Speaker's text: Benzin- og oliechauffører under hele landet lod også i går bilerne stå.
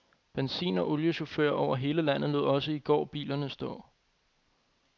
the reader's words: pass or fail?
fail